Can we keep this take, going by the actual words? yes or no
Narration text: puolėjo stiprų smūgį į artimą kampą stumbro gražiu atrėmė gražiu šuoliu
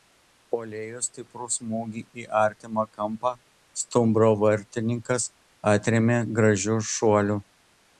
no